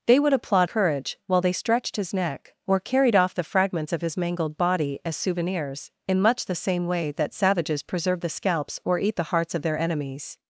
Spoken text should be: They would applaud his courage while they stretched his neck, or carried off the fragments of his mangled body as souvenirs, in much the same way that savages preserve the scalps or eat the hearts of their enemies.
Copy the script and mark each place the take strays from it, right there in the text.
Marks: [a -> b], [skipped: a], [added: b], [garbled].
They would applaud [skipped: his] courage while they stretched his neck, or carried off the fragments of his mangled body as souvenirs, in much the same way that savages preserve the scalps or eat the hearts of their enemies.